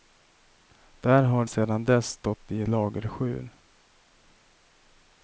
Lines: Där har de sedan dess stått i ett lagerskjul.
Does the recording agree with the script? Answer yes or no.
no